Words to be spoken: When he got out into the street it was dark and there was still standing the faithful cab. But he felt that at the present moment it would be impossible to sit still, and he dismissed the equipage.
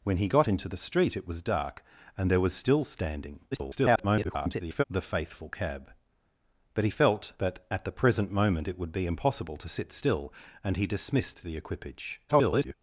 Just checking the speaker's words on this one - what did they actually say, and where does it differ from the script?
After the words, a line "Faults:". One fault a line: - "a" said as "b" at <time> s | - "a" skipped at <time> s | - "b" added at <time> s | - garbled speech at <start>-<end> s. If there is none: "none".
When he got into the street it was dark and there was still standing [garbled] the faithful cab. But he felt that at the present moment it would be impossible to sit still, and he dismissed the equipage. [garbled]
Faults:
- "out" skipped at 0.5 s
- garbled speech at 3.5-4.8 s
- garbled speech at 12.3-12.7 s